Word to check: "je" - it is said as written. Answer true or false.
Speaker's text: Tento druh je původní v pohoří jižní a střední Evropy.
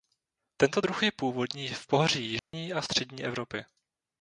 true